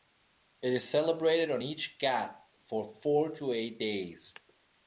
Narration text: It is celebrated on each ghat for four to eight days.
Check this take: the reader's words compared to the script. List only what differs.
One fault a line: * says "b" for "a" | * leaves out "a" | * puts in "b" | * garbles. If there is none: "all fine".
all fine